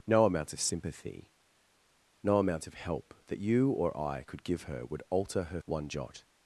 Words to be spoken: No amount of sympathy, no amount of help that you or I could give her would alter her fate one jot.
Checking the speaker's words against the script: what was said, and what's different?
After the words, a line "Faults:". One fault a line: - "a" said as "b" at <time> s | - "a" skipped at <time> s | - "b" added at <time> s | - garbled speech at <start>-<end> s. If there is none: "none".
No amount of sympathy, no amount of help that you or I could give her would alter her one jot.
Faults:
- "fate" skipped at 5.6 s